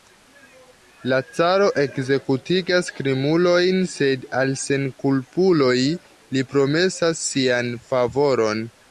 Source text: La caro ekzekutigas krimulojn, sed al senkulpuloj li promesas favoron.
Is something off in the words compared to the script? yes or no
yes